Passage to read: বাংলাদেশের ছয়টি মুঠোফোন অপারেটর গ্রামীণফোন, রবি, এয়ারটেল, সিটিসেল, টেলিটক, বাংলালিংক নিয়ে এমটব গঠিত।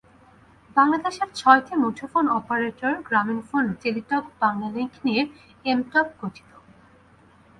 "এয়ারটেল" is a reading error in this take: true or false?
true